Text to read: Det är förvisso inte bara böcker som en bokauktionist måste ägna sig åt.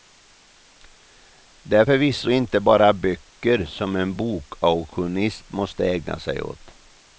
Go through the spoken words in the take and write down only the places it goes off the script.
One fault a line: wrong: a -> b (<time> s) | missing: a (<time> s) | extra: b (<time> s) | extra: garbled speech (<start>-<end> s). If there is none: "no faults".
no faults